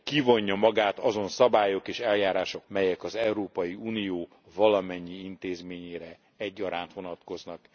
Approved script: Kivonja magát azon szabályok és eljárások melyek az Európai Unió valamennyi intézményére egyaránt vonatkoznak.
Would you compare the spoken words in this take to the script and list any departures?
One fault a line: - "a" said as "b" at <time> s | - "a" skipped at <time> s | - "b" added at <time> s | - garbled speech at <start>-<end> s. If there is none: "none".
none